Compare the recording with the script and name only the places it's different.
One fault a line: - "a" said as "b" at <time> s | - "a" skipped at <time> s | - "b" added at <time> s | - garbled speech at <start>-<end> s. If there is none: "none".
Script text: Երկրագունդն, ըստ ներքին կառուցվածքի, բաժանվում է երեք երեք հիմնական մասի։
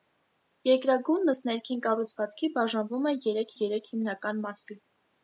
none